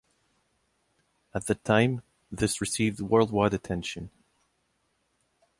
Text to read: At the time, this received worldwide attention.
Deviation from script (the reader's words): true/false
false